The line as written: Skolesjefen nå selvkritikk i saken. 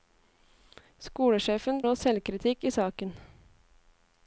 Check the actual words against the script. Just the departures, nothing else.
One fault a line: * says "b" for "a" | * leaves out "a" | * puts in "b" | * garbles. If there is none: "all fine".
all fine